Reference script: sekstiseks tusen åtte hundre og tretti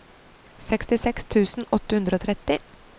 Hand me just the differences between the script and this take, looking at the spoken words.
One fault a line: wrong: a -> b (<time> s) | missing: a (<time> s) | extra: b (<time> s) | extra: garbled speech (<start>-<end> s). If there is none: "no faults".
no faults